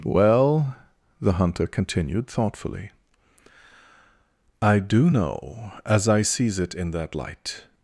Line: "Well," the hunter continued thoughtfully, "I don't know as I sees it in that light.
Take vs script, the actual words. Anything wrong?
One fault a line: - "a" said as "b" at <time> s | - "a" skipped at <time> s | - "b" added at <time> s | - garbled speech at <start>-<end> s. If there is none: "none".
- "don't" said as "do" at 4.8 s